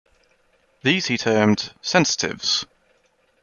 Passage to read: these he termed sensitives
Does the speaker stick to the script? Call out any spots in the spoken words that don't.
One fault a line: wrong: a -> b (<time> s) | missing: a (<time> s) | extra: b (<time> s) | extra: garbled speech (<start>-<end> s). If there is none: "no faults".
no faults